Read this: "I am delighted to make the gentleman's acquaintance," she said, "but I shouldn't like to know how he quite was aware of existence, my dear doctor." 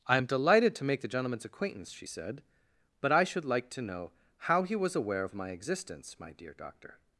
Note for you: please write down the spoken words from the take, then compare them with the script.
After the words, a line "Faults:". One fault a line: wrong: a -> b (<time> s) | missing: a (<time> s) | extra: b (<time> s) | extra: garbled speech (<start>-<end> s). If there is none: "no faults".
"I am delighted to make the gentleman's acquaintance," she said, "but I should like to know how he was aware of my existence, my dear doctor."
Faults:
wrong: shouldn't -> should (3.2 s)
missing: quite (4.8 s)
extra: my (5.3 s)